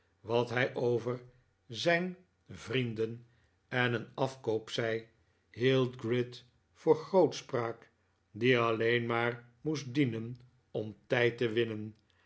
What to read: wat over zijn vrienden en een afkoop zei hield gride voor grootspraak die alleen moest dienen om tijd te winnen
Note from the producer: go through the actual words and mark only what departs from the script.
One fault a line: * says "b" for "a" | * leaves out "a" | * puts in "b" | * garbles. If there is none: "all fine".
* puts in "hij"
* puts in "maar"